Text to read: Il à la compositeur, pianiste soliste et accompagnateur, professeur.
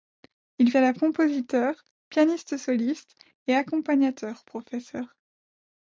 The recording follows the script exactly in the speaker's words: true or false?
true